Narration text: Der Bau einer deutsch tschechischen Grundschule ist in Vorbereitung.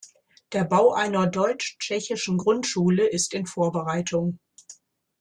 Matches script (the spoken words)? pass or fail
pass